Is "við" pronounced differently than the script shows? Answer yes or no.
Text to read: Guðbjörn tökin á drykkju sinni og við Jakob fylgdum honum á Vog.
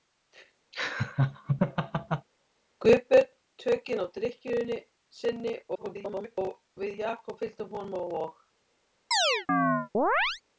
no